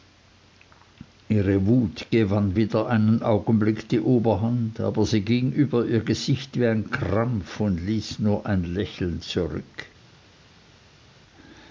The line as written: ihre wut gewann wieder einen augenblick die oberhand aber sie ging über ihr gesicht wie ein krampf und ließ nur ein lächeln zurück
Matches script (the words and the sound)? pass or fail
pass